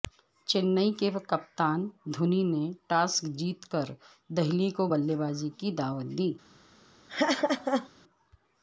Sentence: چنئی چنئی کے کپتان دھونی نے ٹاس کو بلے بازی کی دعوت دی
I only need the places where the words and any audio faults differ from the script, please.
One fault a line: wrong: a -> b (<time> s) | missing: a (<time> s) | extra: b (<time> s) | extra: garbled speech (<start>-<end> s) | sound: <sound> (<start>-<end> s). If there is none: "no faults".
missing: چنئی (0.9 s)
extra: جیت کر دہلی (3.4 s)
sound: laugh (7.1-7.9 s)